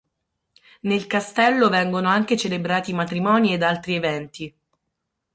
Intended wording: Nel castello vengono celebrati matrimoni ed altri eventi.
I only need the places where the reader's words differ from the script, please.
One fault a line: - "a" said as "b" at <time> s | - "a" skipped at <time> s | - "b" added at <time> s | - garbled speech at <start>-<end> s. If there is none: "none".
- "anche" added at 2.1 s